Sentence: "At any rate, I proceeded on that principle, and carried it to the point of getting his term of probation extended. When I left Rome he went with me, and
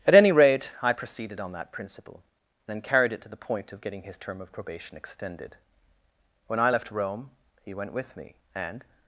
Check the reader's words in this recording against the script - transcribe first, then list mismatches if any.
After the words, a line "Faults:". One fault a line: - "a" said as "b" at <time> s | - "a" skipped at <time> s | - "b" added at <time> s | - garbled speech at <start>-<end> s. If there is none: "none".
"At any rate, I proceeded on that principle, and carried it to the point of getting his term of probation extended. When I left Rome he went with me, and
Faults:
none